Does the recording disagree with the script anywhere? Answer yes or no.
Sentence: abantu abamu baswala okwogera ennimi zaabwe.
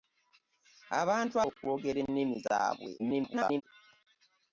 yes